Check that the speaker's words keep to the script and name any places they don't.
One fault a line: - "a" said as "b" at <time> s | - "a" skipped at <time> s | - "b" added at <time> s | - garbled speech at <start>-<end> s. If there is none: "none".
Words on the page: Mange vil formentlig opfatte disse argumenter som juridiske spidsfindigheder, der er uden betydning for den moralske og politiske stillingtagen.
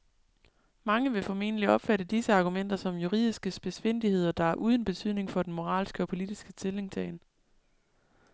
none